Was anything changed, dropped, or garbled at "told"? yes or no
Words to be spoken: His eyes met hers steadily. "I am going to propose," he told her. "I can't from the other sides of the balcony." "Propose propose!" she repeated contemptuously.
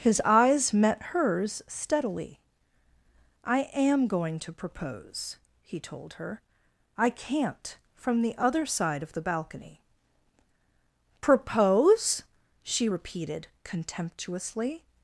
no